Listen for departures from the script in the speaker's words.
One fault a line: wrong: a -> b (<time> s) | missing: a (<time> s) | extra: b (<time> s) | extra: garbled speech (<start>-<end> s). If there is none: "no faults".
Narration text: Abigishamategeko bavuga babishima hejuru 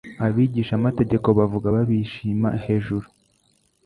no faults